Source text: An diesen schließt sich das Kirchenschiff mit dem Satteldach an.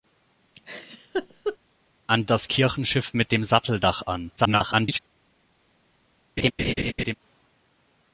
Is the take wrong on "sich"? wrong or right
wrong